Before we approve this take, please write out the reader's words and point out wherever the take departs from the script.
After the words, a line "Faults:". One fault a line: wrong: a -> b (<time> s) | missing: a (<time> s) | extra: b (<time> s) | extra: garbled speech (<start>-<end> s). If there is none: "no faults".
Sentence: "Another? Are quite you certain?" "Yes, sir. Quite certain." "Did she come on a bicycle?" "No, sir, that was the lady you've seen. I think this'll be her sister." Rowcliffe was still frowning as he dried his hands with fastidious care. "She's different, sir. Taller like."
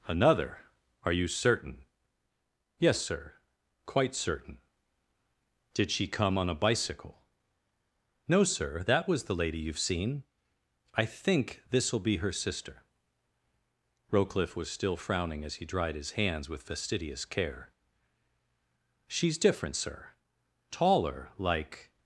"Another? Are you certain?" "Yes, sir. Quite certain." "Did she come on a bicycle?" "No, sir, that was the lady you've seen. I think this'll be her sister." Rowcliffe was still frowning as he dried his hands with fastidious care. "She's different, sir. Taller like."
Faults:
missing: quite (1.1 s)